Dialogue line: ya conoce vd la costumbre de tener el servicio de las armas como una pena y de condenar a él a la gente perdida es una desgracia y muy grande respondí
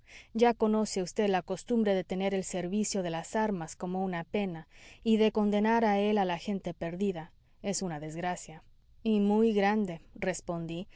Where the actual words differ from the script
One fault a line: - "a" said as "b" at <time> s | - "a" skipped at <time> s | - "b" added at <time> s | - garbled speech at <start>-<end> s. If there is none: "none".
none